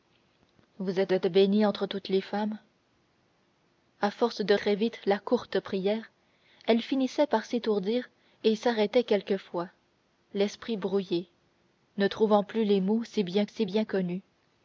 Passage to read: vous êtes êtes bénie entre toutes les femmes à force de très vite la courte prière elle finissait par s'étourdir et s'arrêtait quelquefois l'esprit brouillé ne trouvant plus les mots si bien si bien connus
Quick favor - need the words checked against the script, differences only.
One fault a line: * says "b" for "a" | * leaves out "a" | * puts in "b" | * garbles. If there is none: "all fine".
all fine